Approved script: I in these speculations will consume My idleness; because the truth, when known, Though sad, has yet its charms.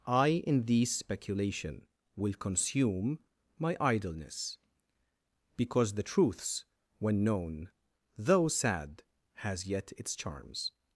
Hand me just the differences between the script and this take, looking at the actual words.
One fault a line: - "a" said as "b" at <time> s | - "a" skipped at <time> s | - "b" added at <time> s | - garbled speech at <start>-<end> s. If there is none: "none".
- "speculations" said as "speculation" at 0.9 s
- "truth" said as "truths" at 6.0 s